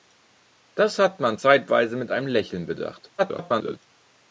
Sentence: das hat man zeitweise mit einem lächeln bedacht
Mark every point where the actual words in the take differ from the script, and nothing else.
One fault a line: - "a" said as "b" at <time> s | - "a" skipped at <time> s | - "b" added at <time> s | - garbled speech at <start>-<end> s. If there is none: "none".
- garbled speech at 3.2-3.8 s